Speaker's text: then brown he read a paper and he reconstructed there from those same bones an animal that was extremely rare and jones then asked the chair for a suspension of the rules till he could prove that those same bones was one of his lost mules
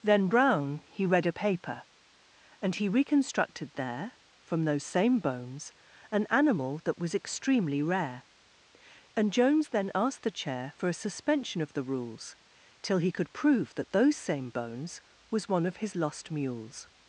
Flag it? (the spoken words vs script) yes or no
no